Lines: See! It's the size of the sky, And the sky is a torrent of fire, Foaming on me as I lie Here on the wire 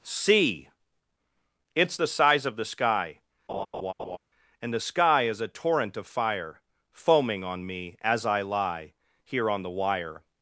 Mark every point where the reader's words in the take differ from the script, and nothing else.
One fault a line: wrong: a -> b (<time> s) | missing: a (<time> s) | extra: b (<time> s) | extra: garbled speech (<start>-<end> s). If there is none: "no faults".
no faults